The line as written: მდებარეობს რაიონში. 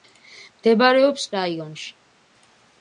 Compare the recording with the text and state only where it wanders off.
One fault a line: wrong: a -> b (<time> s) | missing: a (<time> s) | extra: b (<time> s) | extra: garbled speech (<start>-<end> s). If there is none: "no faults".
no faults